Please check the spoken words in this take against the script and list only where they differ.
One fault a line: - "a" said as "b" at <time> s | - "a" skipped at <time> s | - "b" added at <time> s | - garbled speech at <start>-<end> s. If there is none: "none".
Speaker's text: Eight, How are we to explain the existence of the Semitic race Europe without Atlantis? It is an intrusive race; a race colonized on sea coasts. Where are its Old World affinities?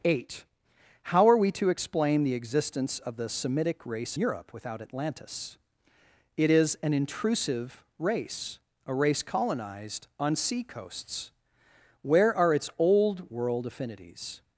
none